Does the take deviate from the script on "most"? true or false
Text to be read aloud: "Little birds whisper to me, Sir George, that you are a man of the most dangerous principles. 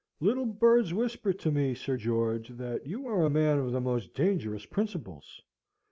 false